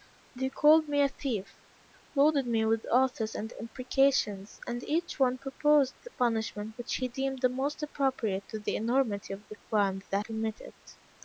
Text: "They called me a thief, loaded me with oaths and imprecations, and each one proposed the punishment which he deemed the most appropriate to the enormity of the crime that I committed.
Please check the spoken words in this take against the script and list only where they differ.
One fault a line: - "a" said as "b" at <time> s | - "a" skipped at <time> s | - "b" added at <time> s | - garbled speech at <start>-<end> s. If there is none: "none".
none